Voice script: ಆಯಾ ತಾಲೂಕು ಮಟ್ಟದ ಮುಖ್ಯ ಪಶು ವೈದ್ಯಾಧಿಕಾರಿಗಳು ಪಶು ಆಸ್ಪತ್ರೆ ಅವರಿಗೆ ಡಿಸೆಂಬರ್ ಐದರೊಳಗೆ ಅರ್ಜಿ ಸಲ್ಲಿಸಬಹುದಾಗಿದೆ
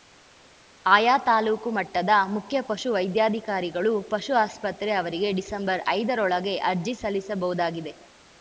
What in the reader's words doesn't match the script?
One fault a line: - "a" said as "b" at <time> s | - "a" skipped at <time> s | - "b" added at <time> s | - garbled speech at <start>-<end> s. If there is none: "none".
none